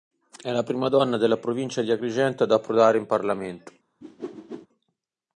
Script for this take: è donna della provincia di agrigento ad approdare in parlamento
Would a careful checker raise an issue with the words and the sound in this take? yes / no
yes